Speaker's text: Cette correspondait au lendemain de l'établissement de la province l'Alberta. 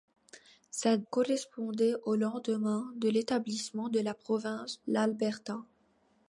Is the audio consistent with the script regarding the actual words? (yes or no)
yes